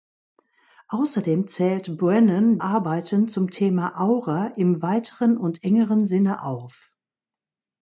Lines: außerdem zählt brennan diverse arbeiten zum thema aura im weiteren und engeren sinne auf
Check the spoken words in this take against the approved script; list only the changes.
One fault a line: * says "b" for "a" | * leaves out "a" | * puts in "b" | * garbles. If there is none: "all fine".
* leaves out "diverse"